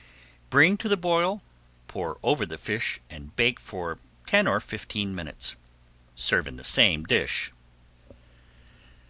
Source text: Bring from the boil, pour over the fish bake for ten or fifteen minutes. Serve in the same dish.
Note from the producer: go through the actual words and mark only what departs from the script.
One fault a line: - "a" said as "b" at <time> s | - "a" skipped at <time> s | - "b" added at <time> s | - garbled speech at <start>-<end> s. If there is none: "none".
- "from" said as "to" at 0.8 s
- "and" added at 3.1 s